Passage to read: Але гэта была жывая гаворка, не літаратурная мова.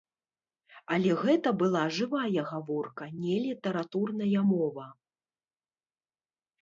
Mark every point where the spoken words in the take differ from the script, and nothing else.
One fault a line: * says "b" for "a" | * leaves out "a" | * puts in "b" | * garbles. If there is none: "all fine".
all fine